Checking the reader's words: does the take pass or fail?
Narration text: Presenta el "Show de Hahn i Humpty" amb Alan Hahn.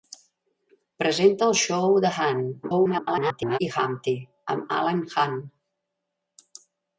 fail